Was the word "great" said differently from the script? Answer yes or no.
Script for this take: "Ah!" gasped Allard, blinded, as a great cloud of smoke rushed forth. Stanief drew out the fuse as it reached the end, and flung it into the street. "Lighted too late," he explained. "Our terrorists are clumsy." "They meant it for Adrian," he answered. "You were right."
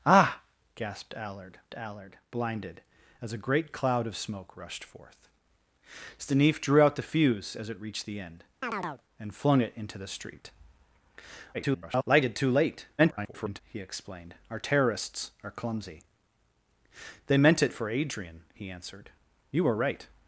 no